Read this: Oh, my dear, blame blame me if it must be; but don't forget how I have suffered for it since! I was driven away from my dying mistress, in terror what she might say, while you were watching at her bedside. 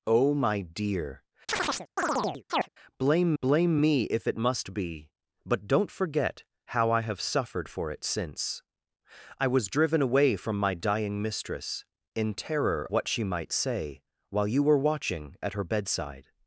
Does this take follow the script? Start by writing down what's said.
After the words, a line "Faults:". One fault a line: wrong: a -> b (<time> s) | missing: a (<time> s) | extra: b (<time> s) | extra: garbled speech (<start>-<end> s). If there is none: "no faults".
Oh, my dear, blame blame me if it must be; but don't forget how I have suffered for it since! I was driven away from my dying mistress, in terror what she might say, while you were watching at her bedside.
Faults:
no faults